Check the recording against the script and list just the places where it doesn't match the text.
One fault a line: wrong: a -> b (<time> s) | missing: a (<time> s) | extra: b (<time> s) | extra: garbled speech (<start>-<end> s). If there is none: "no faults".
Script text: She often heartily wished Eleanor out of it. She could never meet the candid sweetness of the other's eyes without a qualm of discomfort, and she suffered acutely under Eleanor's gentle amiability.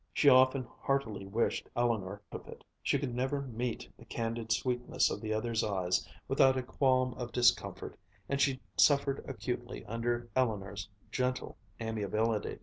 missing: out (2.2 s)